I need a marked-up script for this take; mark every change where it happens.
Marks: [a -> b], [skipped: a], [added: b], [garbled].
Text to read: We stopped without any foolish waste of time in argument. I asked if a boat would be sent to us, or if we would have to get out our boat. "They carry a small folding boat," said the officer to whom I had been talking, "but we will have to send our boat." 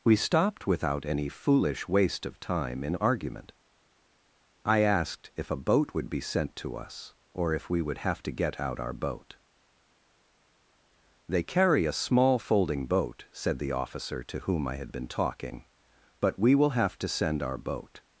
We stopped without any foolish waste of time in argument. I asked if a boat would be sent to us, or if we would have to get out our boat. "They carry a small folding boat," said the officer to whom I had been talking, "but we will have to send our boat."